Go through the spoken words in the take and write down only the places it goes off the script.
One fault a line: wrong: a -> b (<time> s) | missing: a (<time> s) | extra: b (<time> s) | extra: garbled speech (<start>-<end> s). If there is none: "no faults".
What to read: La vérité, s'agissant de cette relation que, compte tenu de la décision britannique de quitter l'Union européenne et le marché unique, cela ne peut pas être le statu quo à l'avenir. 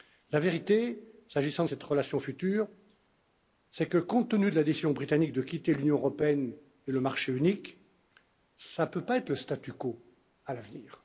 extra: future c'est (2.2 s)